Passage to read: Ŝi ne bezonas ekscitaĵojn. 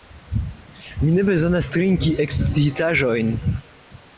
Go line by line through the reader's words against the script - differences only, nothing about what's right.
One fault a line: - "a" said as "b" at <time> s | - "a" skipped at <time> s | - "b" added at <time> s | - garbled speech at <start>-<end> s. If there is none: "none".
- "Ŝi" said as "Mi" at 1.0 s
- "trinki" added at 1.7 s